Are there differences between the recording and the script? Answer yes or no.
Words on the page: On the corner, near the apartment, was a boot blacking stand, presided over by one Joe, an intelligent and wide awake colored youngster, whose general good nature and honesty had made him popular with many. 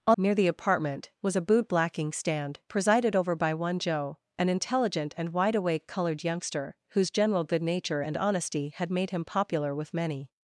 yes